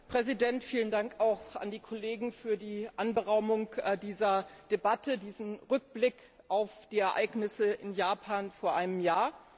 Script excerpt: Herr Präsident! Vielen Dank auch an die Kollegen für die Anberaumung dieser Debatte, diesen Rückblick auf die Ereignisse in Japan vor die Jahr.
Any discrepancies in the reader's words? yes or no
yes